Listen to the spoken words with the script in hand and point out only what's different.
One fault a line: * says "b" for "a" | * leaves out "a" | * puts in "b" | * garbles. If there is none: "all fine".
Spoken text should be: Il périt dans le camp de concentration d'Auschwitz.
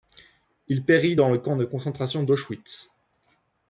all fine